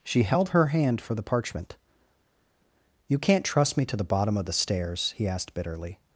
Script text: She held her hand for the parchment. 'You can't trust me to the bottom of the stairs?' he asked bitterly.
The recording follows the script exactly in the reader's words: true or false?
true